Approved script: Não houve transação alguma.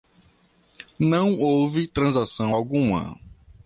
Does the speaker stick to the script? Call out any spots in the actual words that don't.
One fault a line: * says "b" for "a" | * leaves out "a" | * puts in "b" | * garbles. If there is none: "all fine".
all fine